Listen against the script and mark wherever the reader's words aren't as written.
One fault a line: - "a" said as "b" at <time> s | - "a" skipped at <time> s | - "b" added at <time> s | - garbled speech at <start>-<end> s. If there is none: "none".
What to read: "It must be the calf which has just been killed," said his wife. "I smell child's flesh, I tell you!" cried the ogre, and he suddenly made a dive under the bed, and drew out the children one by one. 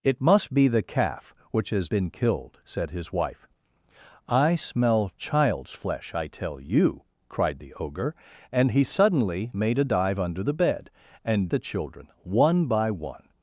- "just" skipped at 1.9 s
- "drew out" skipped at 11.5 s